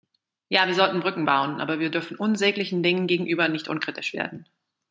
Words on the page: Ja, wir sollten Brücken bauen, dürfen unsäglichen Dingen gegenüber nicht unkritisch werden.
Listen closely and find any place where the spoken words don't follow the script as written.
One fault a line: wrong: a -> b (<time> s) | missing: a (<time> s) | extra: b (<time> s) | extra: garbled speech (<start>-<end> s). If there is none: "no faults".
extra: aber wir (1.6 s)